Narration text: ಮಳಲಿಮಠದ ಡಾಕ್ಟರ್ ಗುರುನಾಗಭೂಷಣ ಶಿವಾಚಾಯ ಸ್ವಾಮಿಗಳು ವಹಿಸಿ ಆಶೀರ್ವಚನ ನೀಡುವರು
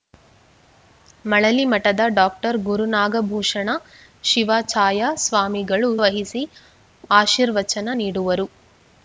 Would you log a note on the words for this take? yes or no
no